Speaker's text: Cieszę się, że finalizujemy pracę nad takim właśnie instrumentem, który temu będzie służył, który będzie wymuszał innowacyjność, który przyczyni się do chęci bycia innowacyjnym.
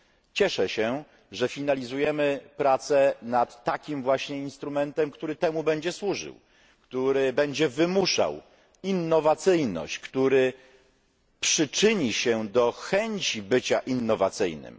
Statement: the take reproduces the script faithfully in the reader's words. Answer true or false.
true